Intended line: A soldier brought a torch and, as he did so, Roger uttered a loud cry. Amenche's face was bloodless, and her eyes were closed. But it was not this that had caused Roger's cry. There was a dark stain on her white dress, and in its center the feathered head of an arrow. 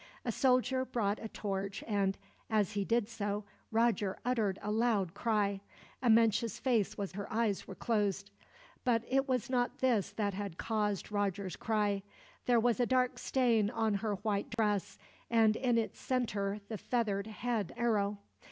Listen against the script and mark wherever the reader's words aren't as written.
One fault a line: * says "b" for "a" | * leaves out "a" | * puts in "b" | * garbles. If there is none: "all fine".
* leaves out "bloodless and"
* leaves out "of an"